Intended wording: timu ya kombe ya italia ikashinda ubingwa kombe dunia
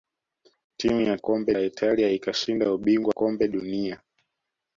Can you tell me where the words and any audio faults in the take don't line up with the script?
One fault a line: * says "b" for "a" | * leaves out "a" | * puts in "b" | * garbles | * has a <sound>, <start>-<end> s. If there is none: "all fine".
all fine